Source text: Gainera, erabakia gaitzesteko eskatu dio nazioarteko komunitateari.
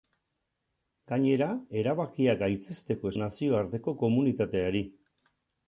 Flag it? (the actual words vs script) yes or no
yes